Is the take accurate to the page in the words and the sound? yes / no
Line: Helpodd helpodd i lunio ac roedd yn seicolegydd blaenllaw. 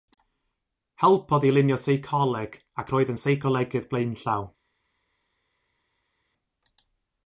no